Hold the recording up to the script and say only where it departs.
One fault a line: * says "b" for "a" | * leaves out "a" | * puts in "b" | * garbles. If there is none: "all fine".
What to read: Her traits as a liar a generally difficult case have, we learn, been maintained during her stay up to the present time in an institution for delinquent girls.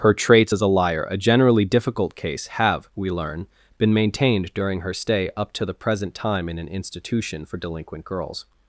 all fine